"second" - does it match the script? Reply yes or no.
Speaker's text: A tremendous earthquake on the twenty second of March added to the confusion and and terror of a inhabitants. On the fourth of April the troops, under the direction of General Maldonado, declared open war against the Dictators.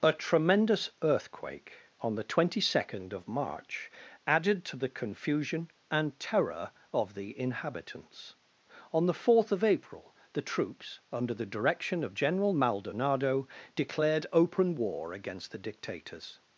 yes